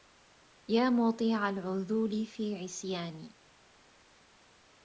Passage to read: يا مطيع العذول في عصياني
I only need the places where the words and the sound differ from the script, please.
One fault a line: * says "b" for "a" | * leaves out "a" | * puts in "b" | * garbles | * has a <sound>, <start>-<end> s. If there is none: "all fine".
all fine